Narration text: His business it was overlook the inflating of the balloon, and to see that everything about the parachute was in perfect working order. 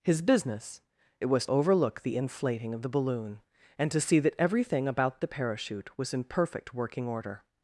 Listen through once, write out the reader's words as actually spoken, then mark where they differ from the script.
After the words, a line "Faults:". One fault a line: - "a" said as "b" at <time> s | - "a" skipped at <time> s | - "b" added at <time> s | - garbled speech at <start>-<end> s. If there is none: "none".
His business it was overlook the inflating of the balloon, and to see that everything about the parachute was in perfect working order.
Faults:
none